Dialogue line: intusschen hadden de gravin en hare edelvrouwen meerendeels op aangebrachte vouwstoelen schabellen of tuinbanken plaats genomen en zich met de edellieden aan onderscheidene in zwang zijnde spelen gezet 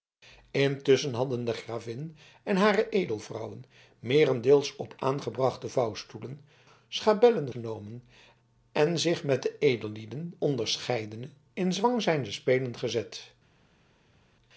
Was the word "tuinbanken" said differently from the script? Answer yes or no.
yes